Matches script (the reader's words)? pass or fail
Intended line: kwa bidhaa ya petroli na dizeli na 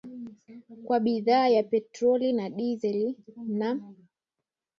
pass